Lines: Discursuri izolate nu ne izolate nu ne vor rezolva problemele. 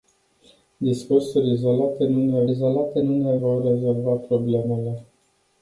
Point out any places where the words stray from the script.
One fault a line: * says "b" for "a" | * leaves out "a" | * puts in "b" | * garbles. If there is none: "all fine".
all fine